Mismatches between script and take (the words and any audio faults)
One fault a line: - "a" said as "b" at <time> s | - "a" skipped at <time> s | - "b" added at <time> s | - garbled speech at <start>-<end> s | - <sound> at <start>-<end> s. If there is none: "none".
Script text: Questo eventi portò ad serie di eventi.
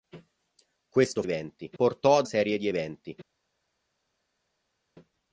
none